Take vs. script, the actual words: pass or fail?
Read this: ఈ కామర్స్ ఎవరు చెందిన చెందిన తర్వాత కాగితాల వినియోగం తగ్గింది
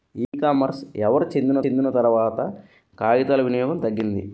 pass